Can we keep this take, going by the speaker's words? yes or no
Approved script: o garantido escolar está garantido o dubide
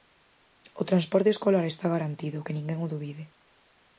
no